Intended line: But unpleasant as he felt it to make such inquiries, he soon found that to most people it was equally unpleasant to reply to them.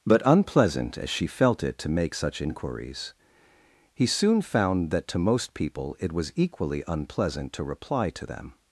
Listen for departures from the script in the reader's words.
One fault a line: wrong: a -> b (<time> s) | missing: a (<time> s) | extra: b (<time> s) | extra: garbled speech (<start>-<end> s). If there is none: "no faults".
wrong: he -> she (1.1 s)